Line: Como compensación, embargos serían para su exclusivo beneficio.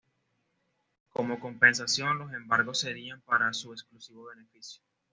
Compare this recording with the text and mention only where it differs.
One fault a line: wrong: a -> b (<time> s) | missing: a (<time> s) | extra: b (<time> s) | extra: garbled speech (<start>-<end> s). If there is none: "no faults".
extra: los (2.2 s)